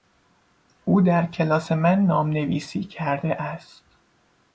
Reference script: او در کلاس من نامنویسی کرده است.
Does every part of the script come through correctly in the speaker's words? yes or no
yes